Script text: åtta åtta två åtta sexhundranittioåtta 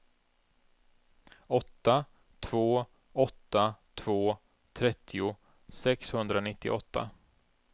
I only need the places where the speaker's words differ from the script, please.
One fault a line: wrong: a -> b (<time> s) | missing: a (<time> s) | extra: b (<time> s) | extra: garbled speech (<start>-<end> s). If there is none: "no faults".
extra: två (2.4 s)
wrong: åtta -> trettio (4.7 s)